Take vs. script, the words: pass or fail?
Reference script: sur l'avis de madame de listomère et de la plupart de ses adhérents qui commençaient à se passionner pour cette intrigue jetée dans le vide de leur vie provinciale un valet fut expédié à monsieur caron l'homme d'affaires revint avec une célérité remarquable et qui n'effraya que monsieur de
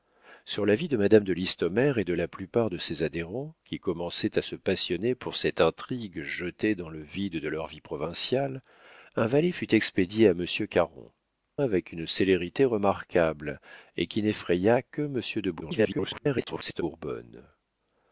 fail